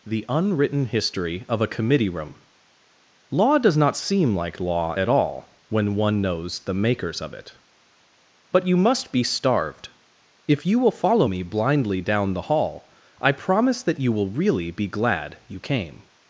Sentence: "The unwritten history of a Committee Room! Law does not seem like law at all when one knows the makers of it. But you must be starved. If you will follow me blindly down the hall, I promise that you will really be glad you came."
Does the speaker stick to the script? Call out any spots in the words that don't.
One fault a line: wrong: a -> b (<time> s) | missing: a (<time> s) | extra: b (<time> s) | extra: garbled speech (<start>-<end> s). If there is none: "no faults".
no faults